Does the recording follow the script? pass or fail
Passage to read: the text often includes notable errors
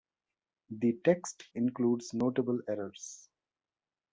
fail